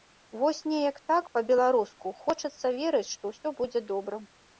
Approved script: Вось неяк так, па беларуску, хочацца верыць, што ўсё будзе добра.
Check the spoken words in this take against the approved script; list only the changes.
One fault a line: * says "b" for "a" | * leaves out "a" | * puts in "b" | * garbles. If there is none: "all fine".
all fine